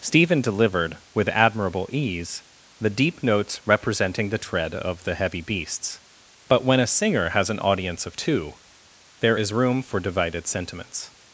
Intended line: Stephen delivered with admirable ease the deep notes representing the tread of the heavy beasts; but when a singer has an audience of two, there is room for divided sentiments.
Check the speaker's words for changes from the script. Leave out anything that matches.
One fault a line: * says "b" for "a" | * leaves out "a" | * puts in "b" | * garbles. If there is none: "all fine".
all fine